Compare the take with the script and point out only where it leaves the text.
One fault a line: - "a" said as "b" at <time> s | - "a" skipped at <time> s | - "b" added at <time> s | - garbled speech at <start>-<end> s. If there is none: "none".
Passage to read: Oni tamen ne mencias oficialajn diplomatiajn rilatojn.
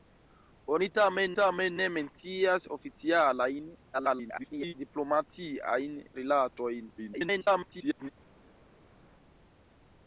- "tamen" added at 1.4 s
- garbled speech at 3.9-4.7 s
- garbled speech at 7.0-8.1 s